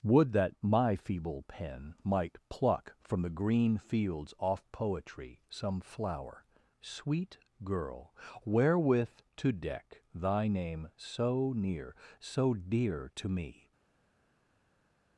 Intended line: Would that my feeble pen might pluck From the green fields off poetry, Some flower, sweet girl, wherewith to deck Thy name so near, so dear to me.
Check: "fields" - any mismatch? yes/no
no